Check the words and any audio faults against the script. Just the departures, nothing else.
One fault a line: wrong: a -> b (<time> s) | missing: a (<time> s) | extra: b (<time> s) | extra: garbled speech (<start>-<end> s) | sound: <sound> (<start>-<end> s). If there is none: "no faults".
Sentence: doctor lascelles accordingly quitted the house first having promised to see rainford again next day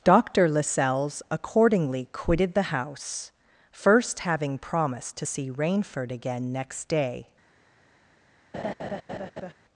sound: laugh (8.5-9.5 s)